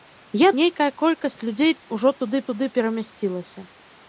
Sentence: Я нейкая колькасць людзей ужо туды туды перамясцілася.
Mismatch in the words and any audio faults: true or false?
false